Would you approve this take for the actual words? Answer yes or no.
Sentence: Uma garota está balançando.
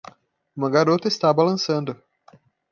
yes